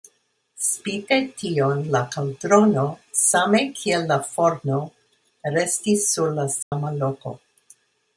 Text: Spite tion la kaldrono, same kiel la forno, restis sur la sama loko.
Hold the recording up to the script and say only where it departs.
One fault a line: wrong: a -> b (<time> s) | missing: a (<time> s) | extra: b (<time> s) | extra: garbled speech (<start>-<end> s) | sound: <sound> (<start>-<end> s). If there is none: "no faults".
sound: dropout (6.6-6.7 s)